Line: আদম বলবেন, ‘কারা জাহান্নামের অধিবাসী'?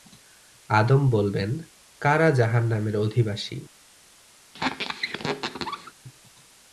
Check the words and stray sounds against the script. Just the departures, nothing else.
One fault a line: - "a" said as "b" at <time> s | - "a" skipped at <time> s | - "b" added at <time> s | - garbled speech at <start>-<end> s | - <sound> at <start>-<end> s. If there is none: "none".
- squeak at 4.5-5.9 s